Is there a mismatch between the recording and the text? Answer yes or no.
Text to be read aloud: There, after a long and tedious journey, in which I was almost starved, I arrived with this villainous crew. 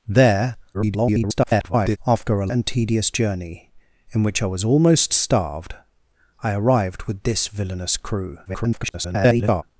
yes